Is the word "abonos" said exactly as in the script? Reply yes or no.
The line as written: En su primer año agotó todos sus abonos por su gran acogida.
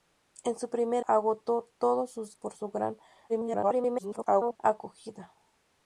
no